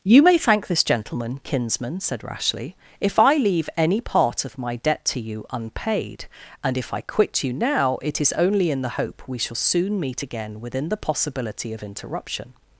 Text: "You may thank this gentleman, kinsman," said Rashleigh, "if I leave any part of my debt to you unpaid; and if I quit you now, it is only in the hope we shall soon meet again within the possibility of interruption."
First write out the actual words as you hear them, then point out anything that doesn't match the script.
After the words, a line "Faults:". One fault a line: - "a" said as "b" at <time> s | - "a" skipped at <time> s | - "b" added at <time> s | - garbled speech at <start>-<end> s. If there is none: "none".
"You may thank this gentleman, kinsman," said Rashleigh, "if I leave any part of my debt to you unpaid; and if I quit you now, it is only in the hope we shall soon meet again within the possibility of interruption."
Faults:
none